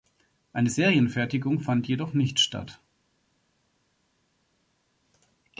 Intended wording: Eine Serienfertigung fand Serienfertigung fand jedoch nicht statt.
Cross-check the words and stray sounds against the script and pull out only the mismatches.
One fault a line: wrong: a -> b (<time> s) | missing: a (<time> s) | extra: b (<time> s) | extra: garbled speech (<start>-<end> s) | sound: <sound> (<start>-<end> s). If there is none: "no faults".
missing: Serienfertigung fand (1.9 s)